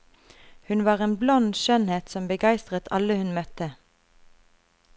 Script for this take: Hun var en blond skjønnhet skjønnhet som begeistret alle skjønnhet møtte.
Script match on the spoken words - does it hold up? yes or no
no